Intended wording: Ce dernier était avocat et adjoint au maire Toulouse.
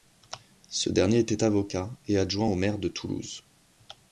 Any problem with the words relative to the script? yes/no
yes